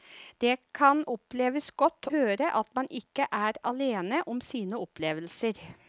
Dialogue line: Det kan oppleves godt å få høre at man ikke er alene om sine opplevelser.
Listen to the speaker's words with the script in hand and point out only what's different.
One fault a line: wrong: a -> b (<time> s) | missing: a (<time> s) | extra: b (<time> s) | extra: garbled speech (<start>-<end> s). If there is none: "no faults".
missing: å få (2.1 s)